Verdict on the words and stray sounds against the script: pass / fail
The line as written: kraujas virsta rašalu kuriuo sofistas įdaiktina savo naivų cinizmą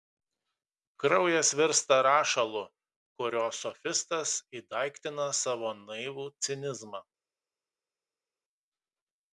pass